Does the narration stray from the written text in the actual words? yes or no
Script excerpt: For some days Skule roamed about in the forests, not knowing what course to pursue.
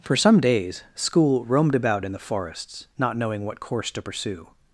no